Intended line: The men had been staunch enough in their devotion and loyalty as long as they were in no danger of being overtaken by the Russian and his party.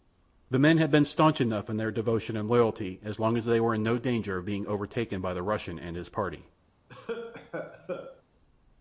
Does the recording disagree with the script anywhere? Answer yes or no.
no